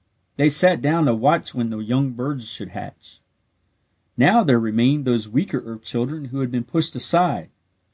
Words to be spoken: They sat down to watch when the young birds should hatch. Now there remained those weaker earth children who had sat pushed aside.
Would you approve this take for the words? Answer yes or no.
no